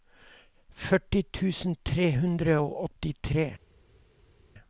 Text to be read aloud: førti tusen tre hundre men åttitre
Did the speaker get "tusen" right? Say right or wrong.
right